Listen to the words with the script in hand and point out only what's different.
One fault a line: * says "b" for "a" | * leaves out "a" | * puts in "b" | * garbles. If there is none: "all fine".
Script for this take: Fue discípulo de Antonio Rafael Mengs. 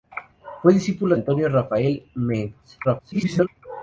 * leaves out "de"
* garbles